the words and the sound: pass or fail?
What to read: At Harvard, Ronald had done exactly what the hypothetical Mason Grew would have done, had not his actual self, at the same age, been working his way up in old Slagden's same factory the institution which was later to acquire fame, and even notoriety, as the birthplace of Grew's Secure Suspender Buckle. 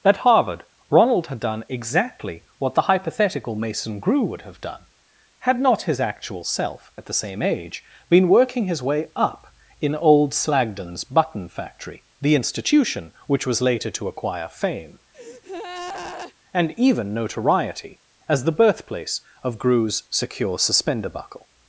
fail